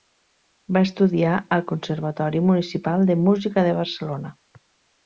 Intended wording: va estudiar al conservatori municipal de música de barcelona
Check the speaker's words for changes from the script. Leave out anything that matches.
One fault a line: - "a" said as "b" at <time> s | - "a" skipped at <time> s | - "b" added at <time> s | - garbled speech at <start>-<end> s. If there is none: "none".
none